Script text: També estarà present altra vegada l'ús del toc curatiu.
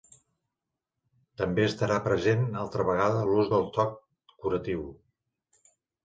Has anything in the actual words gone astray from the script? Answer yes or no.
no